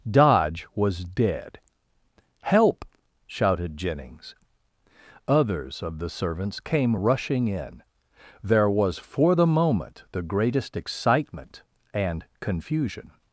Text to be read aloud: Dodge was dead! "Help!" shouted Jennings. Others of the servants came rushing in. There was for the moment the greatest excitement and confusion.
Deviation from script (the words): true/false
false